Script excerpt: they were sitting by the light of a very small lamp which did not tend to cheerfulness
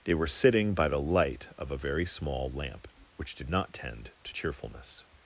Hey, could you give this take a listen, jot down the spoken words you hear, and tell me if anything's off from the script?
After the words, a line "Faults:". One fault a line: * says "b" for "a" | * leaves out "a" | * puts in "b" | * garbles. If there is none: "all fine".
they were sitting by the light of a very small lamp which did not tend to cheerfulness
Faults:
all fine